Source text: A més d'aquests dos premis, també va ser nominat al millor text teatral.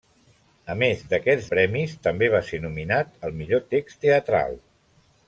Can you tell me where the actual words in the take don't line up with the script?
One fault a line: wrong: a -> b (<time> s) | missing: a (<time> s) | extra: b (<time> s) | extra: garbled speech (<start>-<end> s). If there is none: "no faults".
missing: dos (1.5 s)